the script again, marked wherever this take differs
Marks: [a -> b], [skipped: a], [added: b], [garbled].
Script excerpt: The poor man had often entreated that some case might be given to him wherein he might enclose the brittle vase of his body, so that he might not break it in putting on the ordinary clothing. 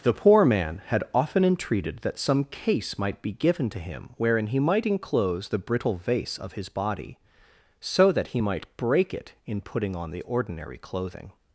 The poor man had often entreated that some case might be given to him wherein he might enclose the brittle vase of his body, so that he might [skipped: not] break it in putting on the ordinary clothing.